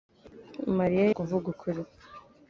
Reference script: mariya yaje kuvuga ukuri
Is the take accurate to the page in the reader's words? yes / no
no